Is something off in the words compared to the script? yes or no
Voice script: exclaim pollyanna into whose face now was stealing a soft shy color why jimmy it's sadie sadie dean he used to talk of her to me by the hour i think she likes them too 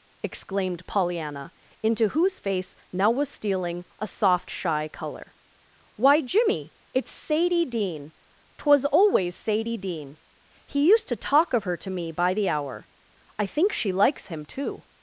yes